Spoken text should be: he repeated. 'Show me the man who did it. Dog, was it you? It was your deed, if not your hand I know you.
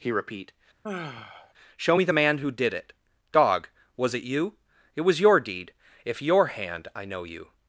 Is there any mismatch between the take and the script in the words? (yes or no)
yes